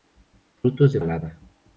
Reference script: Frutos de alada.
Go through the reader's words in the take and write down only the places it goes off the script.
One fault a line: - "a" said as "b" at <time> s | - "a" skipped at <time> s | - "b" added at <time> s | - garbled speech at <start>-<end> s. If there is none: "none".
none